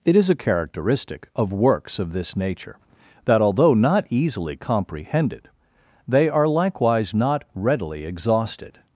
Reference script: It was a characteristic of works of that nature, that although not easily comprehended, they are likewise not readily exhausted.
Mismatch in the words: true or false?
true